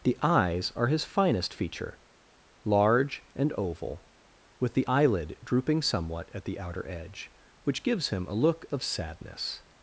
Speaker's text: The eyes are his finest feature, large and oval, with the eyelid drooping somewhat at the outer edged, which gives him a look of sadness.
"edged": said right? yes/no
no